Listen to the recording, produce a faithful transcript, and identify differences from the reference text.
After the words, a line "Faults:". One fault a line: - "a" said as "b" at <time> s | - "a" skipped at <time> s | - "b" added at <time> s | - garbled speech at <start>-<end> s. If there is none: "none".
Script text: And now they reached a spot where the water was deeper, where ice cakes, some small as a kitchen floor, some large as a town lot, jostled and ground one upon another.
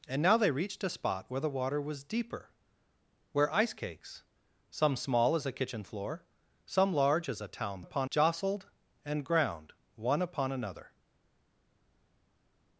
And now they reached a spot where the water was deeper, where ice cakes, some small as a kitchen floor, some large as a town upon, jostled and ground one upon another.
Faults:
- "lot" said as "upon" at 7.8 s